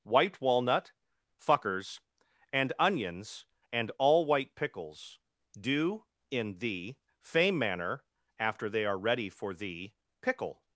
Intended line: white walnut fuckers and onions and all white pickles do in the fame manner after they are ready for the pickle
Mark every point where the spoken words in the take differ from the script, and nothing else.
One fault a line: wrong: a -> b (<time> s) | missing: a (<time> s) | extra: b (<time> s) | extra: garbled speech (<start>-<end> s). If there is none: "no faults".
no faults